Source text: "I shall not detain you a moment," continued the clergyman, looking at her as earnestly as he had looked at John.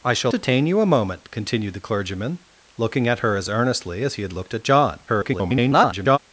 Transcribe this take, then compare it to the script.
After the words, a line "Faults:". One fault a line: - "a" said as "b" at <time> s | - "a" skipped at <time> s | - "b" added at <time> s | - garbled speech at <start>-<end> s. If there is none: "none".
"I shall detain you a moment," continued the clergyman, looking at her as earnestly as he had looked at John. [garbled]
Faults:
- "not" skipped at 0.3 s
- garbled speech at 5.1-6.2 s